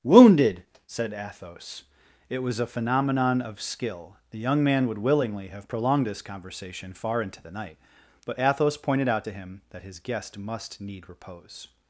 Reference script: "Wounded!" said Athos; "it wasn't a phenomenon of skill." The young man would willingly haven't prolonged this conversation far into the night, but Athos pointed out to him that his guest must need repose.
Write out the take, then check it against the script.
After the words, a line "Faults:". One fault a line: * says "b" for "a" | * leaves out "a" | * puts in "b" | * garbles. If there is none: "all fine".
"Wounded!" said Athos; "it was a phenomenon of skill." The young man would willingly have prolonged this conversation far into the night, but Athos pointed out to him that his guest must need repose.
Faults:
* says "was" for "wasn't"
* says "have" for "haven't"